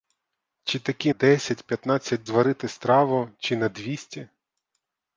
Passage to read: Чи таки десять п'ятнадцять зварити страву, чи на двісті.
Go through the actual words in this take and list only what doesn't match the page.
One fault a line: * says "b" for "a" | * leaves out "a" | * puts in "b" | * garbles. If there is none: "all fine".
all fine